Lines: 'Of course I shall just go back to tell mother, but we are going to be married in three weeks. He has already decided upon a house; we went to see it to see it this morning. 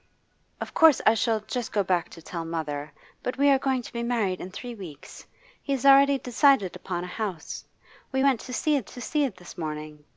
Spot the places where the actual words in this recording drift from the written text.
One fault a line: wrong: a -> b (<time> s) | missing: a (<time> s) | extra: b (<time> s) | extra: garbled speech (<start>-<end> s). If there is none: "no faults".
no faults